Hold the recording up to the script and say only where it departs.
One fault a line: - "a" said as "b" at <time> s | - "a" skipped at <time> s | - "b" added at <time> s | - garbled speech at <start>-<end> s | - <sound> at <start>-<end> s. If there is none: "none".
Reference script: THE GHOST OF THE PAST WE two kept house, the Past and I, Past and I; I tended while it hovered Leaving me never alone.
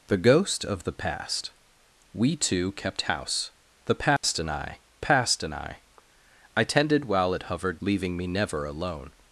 - dropout at 4.2-4.2 s